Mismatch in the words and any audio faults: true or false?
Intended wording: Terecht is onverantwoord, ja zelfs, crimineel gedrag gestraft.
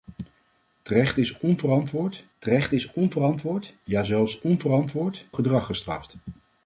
true